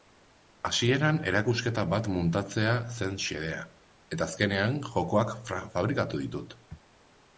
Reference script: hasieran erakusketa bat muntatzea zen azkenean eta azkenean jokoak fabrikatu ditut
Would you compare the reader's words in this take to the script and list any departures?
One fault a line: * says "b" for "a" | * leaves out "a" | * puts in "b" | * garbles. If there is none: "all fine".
* says "xedea" for "azkenean"